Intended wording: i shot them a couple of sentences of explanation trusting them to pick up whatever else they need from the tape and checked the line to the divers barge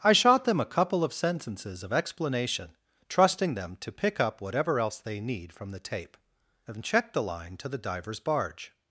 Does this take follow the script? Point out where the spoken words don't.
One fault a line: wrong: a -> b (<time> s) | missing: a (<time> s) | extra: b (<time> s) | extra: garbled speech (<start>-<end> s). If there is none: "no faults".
no faults